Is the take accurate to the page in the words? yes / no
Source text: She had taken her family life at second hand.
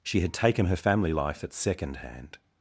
yes